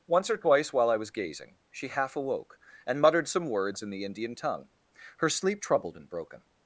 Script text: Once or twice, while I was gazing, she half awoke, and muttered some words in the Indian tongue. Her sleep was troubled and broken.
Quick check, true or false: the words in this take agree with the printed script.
false